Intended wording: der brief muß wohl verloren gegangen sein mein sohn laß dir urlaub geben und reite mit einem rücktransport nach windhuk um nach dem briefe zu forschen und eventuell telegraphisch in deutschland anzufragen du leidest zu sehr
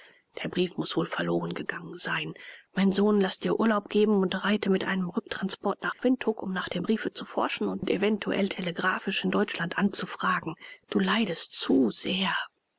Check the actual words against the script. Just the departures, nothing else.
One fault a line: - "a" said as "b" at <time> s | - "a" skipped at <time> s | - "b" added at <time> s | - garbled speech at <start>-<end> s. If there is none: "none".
none